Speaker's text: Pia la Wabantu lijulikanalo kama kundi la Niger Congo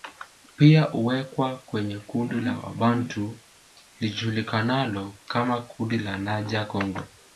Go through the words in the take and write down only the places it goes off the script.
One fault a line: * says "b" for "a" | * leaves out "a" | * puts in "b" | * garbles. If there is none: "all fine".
* puts in "huwekwa kwenye kundi"